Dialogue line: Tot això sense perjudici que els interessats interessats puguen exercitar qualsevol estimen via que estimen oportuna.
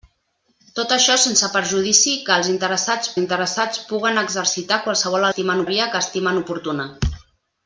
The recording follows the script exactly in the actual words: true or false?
true